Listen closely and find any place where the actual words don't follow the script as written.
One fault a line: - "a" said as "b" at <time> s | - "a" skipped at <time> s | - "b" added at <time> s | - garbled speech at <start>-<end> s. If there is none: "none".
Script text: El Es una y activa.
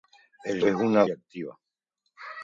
none